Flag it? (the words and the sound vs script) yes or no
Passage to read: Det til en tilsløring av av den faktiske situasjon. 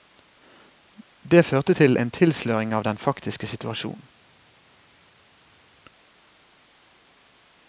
yes